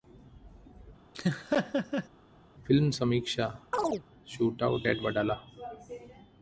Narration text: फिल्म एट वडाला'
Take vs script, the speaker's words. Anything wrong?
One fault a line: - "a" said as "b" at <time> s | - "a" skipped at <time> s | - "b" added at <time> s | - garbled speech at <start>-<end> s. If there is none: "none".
- "समीक्षा शूटआउट" added at 3.0 s